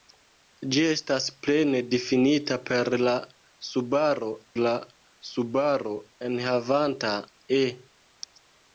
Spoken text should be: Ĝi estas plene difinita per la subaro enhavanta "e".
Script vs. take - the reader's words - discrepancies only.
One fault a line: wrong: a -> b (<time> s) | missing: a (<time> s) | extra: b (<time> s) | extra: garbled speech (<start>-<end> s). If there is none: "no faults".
extra: la subaro (4.6 s)